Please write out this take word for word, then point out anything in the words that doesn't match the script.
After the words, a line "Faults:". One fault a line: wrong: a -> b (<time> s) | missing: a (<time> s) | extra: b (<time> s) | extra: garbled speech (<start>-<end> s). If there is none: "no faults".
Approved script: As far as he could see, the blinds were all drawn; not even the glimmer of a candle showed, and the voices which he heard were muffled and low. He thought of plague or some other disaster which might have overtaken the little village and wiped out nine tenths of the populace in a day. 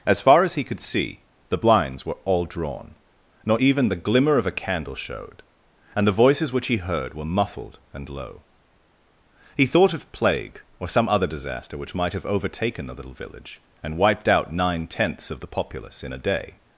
As far as he could see, the blinds were all drawn; not even the glimmer of a candle showed, and the voices which he heard were muffled and low. He thought of plague or some other disaster which might have overtaken the little village and wiped out nine tenths of the populace in a day.
Faults:
no faults